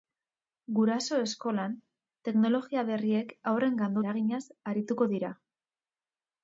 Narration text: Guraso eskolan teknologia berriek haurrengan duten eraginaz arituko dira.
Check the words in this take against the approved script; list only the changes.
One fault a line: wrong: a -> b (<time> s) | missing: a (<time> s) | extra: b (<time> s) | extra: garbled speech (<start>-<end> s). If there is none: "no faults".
missing: duten (4.0 s)